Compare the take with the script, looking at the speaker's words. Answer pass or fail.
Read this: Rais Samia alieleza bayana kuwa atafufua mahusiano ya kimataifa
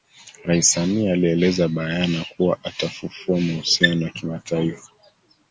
pass